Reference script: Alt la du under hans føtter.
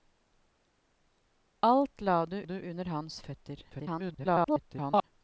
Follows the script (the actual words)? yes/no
no